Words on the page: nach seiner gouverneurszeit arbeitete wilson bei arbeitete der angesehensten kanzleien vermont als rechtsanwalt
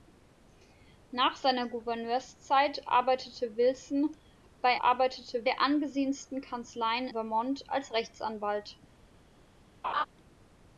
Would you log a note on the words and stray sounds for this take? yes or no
yes